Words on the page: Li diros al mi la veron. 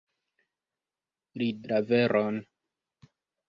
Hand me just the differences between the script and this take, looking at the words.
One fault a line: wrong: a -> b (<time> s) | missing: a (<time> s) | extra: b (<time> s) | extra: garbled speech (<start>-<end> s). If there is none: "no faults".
missing: diros al mi (1.5 s)